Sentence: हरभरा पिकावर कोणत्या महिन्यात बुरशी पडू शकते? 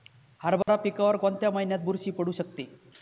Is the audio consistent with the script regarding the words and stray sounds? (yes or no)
no